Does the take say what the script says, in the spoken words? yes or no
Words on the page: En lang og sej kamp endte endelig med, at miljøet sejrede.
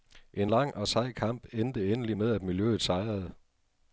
yes